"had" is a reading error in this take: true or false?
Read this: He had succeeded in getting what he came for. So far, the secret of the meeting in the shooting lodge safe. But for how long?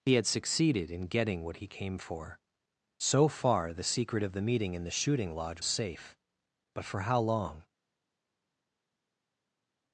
false